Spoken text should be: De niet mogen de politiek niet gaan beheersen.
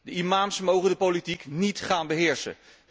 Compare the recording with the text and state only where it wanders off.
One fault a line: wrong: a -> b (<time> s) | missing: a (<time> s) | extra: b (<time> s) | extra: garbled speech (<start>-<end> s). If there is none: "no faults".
wrong: niet -> imams (0.1 s)